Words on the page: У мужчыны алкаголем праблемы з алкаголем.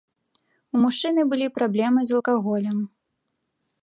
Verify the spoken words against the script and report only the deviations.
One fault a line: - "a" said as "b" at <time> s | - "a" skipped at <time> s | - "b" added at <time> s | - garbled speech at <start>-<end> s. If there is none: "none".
- "алкаголем" said as "былі" at 1.3 s